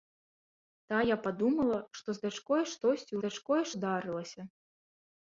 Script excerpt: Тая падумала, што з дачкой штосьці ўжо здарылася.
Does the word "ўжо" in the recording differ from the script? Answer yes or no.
yes